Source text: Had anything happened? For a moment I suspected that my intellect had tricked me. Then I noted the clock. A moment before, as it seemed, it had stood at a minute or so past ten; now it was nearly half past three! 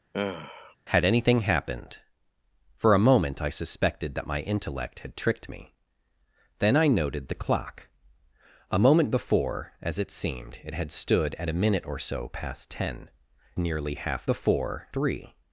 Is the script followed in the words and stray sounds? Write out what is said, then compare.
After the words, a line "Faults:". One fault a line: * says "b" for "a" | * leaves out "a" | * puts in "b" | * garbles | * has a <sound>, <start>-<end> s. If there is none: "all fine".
Had anything happened? For a moment I suspected that my intellect had tricked me. Then I noted the clock. A moment before, as it seemed, it had stood at a minute or so past ten; nearly half before three!
Faults:
* has a sigh, 0.1-0.8 s
* leaves out "now it was"
* says "before" for "past"